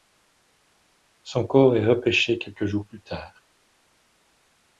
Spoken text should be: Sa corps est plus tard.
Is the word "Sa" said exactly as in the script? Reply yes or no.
no